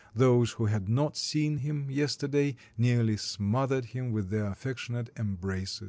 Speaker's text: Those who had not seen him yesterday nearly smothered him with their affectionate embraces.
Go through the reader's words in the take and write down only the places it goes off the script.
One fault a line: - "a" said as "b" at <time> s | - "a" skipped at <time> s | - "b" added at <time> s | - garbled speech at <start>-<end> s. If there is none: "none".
none